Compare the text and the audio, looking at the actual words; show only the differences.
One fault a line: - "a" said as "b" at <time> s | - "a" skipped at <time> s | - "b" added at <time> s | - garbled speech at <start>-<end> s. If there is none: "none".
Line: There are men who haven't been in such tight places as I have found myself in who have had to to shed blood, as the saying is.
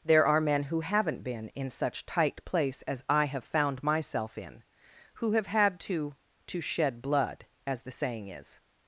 - "places" said as "place" at 2.5 s